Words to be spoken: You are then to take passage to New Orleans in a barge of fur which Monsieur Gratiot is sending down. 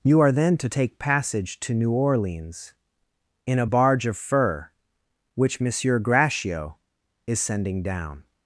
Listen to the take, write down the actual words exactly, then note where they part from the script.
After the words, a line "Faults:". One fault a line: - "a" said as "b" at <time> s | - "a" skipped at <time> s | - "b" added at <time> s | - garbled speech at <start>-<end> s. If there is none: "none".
You are then to take passage to New Orleans in a barge of fur which Monsieur Gratiot is sending down.
Faults:
none